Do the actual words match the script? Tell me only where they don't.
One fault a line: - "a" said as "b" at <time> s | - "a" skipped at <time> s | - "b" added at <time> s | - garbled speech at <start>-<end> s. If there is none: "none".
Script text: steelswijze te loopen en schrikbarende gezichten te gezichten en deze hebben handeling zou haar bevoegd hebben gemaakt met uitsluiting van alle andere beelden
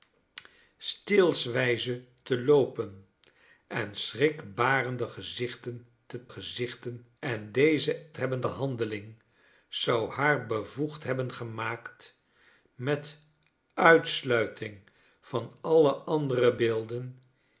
none